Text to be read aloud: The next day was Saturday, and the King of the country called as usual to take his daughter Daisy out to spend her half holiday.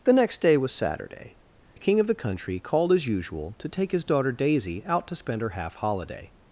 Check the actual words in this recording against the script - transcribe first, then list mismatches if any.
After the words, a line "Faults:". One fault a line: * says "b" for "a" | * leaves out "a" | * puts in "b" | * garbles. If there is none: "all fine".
The next day was Saturday, the King of the country called as usual to take his daughter Daisy out to spend her half holiday.
Faults:
* leaves out "and"